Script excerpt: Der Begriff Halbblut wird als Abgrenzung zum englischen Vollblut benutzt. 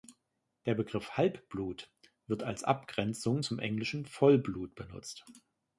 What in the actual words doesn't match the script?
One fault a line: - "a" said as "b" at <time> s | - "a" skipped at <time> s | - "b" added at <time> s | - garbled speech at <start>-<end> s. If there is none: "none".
none